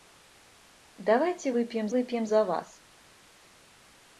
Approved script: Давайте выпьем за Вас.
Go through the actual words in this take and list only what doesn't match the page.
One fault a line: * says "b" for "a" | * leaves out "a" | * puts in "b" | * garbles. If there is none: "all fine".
* puts in "выпьем"